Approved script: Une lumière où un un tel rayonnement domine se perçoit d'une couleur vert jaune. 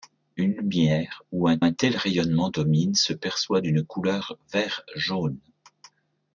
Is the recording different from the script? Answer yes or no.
no